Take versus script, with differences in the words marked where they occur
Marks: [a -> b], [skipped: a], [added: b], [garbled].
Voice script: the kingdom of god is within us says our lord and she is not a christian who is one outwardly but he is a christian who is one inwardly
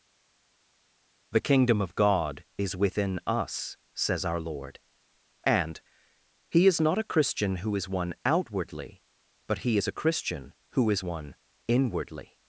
the kingdom of god is within us says our lord and [she -> he] is not a christian who is one outwardly but he is a christian who is one inwardly